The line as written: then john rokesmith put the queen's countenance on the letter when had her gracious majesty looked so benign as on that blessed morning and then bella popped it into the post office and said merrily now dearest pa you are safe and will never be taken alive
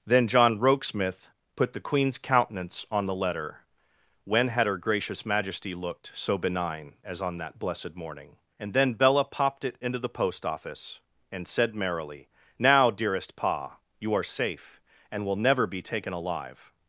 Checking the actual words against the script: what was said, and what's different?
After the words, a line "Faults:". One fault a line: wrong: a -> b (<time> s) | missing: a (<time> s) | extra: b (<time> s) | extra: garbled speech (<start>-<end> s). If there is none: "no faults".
then john rokesmith put the queen's countenance on the letter when had her gracious majesty looked so benign as on that blessed morning and then bella popped it into the post office and said merrily now dearest pa you are safe and will never be taken alive
Faults:
no faults